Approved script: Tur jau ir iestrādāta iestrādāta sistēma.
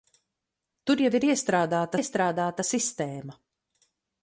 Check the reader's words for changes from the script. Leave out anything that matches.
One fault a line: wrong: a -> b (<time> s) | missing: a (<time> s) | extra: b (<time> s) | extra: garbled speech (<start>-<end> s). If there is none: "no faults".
no faults